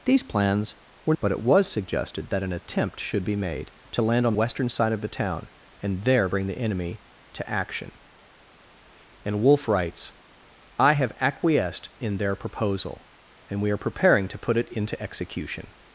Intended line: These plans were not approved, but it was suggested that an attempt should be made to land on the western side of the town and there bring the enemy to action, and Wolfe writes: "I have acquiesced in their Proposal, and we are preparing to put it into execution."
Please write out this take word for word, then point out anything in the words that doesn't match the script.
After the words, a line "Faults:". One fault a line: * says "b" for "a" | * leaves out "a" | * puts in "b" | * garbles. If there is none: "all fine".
These plans were but it was suggested that an attempt should be made to land on western side of the town and there bring the enemy to action, and Wolfe writes: "I have acquiesced in their Proposal, and we are preparing to put it into execution."
Faults:
* leaves out "not approved"
* leaves out "the"